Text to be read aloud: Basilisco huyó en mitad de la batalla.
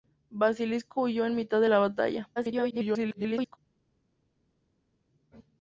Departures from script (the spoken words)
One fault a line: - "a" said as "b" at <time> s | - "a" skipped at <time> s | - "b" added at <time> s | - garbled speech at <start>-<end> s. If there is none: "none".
- garbled speech at 2.4-3.6 s